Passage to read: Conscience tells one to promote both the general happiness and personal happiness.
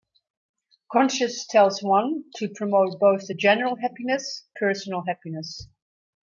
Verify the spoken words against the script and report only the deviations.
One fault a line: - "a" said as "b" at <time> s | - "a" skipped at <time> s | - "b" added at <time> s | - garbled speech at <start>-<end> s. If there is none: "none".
- "and" skipped at 4.4 s